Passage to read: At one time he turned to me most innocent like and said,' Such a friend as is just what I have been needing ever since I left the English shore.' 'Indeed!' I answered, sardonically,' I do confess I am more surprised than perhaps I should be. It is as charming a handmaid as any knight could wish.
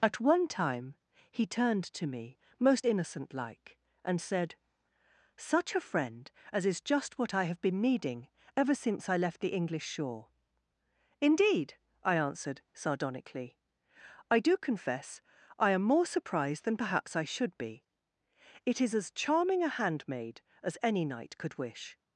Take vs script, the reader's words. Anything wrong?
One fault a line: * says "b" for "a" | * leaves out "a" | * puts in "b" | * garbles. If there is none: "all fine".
all fine